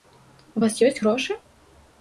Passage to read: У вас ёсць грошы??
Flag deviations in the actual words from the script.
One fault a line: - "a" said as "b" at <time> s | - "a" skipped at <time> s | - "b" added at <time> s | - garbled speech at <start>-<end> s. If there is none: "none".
none